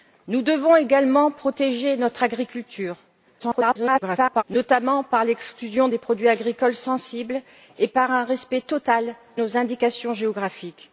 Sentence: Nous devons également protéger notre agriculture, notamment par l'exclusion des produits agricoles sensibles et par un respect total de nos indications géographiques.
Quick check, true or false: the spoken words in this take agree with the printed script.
false